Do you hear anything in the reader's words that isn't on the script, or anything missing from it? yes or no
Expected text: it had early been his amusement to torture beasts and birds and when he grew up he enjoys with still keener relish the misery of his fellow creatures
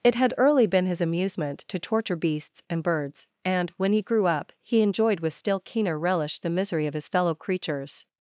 yes